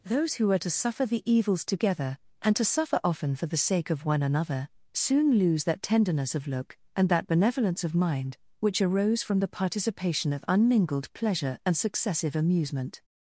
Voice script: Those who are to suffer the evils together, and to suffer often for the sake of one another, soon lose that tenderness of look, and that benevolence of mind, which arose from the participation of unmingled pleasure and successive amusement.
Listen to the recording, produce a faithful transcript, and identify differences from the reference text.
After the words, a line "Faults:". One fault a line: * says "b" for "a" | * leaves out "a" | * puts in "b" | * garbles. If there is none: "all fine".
Those who are to suffer the evils together, and to suffer often for the sake of one another, soon lose that tenderness of look, and that benevolence of mind, which arose from the participation of unmingled pleasure and successive amusement.
Faults:
all fine